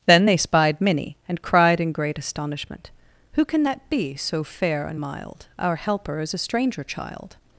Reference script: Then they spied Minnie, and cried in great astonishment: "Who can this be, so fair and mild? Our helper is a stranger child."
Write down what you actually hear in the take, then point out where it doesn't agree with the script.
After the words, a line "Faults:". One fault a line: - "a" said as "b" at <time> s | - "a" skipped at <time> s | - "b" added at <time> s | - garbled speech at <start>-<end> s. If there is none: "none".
Then they spied Minnie, and cried in great astonishment: "Who can that be, so fair and mild? Our helper is a stranger child."
Faults:
- "this" said as "that" at 3.6 s